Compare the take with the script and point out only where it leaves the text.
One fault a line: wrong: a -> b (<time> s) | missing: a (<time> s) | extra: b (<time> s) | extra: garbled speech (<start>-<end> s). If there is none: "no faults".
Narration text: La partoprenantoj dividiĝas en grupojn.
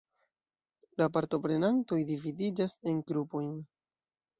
no faults